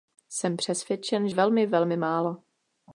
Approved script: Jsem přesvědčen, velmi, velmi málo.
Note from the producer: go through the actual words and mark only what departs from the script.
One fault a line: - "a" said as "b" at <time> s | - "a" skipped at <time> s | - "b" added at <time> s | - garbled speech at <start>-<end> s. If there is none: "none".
none